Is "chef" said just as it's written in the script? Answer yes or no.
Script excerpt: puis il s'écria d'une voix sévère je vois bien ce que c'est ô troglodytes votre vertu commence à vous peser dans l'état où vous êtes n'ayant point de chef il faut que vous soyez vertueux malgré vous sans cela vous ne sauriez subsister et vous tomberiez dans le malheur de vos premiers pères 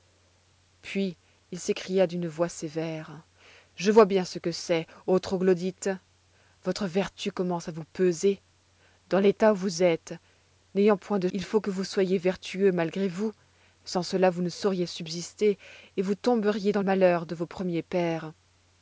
no